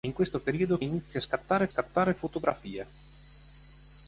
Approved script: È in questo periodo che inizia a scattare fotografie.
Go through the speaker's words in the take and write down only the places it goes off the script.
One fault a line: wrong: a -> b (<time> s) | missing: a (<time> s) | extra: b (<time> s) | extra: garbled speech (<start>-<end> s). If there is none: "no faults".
missing: che (0.8 s)
extra: scattare (1.7 s)